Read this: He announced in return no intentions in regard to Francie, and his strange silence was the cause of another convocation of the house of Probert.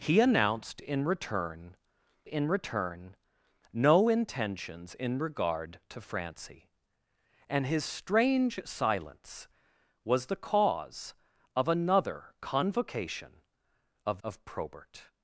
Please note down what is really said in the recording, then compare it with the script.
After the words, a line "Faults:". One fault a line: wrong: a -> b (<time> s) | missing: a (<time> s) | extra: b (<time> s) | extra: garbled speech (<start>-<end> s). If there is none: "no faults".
He announced in return in return no intentions in regard to Francie, and his strange silence was the cause of another convocation of of Probert.
Faults:
extra: in return (2.3 s)
missing: the house (14.2 s)